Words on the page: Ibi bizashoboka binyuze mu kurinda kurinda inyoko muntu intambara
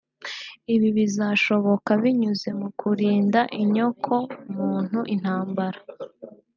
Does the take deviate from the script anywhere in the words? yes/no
yes